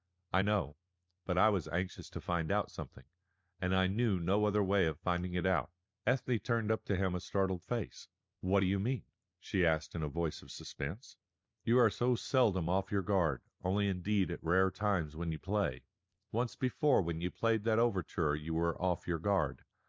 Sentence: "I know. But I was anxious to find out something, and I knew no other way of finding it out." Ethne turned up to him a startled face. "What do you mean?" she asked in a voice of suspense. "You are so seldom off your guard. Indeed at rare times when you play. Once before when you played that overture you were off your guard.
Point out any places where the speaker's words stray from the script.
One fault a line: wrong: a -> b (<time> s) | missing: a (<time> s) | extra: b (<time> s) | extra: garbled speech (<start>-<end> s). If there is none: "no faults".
extra: Only (13.6 s)